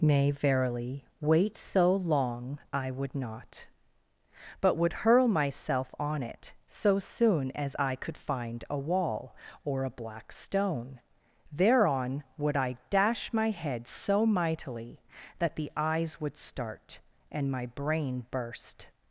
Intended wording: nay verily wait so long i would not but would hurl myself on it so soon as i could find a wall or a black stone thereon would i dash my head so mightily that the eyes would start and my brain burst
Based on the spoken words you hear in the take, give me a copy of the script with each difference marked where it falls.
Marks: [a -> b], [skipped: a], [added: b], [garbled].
nay verily wait so long i would not but would hurl myself on it so soon as i could find a wall or a black stone thereon would i dash my head so mightily that the eyes would start and my brain burst